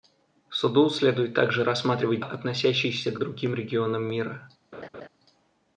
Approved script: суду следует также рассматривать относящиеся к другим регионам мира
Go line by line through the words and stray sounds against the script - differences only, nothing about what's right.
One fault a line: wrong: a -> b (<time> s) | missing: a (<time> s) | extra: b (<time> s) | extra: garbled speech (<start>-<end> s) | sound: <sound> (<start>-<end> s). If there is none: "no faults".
sound: laugh (4.7-5.1 s)